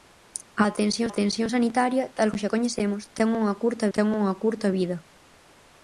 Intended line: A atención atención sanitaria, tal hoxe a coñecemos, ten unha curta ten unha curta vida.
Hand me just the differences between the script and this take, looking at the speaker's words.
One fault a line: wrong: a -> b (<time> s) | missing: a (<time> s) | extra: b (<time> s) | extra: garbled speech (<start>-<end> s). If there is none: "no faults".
no faults